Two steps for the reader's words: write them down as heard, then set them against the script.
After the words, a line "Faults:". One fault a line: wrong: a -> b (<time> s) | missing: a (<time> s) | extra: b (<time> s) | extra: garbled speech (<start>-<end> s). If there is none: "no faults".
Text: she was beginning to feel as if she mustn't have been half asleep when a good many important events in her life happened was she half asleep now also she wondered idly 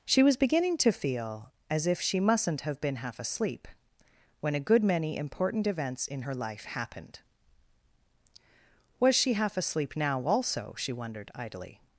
she was beginning to feel as if she mustn't have been half asleep when a good many important events in her life happened was she half asleep now also she wondered idly
Faults:
no faults